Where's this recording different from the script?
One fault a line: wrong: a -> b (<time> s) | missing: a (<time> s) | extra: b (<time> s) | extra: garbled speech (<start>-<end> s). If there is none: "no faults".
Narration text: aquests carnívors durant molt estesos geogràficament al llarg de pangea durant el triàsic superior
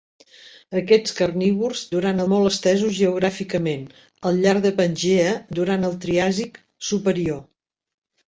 no faults